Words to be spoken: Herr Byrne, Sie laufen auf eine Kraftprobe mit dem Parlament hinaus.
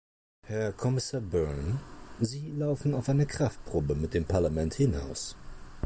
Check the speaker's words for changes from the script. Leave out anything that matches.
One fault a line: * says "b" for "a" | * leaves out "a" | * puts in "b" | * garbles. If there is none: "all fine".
* puts in "Kommissar"